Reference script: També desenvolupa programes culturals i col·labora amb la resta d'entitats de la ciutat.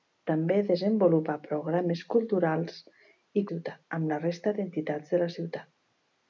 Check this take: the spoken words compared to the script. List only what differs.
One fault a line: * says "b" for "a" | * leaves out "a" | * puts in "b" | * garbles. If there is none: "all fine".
* says "ciutat" for "col·labora"